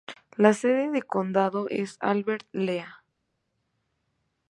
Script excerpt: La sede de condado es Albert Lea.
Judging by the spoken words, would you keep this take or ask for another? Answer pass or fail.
pass